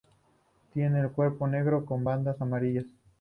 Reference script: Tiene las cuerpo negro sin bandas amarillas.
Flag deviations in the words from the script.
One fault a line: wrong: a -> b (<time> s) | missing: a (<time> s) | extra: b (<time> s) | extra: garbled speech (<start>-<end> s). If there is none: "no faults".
wrong: las -> el (1.0 s)
wrong: sin -> con (1.9 s)